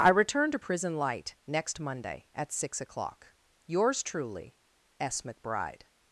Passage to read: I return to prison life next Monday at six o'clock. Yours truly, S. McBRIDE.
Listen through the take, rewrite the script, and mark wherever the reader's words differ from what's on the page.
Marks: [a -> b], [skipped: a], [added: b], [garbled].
I return to prison [life -> light] next Monday at six o'clock. Yours truly, S. McBRIDE.